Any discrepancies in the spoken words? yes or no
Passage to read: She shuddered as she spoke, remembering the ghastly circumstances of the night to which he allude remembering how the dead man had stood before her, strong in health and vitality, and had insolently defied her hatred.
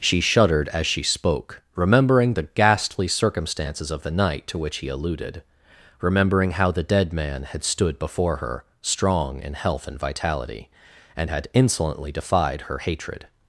yes